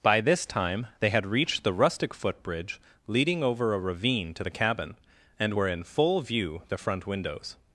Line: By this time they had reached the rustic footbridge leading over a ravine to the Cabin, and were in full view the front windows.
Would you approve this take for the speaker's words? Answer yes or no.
yes